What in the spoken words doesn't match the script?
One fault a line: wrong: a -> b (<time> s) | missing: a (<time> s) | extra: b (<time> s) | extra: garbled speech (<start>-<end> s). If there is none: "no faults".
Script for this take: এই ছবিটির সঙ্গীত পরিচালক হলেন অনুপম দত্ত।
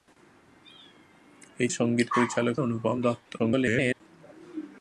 missing: ছবিটির (1.7 s)
missing: হলেন (2.5 s)
extra: garbled speech (3.4-4.0 s)